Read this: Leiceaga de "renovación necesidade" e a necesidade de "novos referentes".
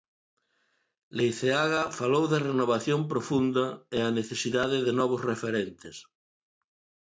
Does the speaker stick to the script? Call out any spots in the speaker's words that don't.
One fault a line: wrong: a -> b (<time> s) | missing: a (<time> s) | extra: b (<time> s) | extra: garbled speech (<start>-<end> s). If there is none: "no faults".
extra: falou (2.0 s)
wrong: necesidade -> profunda (3.1 s)